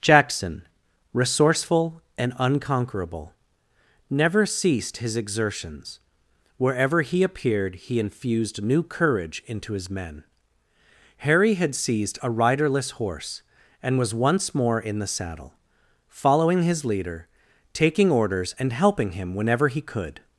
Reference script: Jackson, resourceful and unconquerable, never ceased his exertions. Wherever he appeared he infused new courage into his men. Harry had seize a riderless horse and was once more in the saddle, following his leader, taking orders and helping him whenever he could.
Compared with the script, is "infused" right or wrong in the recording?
right